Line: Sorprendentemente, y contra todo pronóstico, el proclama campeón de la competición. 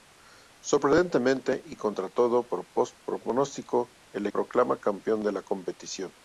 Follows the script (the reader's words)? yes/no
yes